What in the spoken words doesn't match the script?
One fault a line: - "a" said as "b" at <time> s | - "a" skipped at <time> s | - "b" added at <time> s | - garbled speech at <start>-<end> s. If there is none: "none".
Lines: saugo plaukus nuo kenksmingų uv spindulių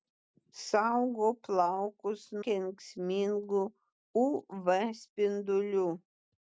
- "nuo" skipped at 2.2 s